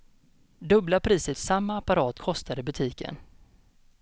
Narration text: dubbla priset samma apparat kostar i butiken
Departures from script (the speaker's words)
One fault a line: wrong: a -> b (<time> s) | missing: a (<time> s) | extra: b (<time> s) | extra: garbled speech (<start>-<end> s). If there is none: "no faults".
no faults